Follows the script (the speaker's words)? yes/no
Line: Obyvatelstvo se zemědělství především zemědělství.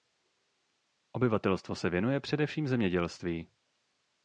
no